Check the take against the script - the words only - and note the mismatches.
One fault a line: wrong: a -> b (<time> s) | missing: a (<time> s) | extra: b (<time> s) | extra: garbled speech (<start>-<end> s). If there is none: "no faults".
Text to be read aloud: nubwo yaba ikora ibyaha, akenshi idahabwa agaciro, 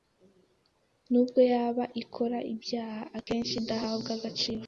no faults